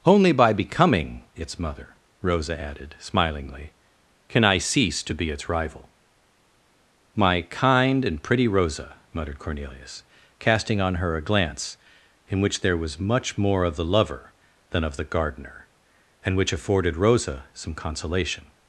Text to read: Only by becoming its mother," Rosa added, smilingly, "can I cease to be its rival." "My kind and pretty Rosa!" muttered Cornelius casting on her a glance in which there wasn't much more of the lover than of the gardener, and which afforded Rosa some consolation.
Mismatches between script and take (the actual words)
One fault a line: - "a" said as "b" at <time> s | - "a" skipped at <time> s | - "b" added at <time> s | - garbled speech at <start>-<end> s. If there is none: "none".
- "wasn't" said as "was" at 12.8 s